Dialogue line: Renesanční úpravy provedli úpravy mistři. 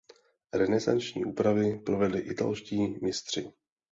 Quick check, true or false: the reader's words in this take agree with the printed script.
false